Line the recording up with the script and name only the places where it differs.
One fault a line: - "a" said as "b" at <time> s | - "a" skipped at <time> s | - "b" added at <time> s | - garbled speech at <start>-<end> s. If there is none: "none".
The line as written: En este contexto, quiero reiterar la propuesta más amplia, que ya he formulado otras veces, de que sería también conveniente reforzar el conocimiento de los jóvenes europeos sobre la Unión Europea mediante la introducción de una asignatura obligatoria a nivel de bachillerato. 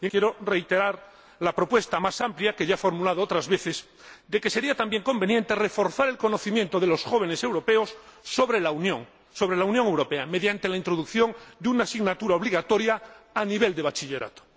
- "este contexto" skipped at 0.1 s